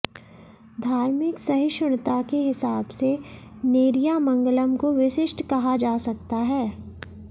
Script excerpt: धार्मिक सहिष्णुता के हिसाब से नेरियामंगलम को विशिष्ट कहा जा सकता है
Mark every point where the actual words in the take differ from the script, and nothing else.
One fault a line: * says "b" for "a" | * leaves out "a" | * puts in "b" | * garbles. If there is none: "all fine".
all fine